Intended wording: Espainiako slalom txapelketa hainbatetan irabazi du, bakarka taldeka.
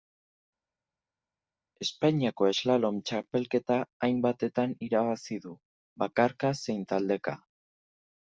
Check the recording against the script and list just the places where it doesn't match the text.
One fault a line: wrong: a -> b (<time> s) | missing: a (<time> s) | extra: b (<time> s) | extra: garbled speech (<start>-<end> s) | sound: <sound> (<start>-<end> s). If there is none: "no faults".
extra: zein (6.6 s)